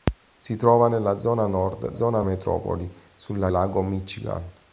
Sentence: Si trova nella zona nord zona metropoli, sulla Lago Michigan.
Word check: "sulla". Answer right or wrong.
right